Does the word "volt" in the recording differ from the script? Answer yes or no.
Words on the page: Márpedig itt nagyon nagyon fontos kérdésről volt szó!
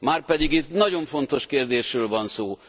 yes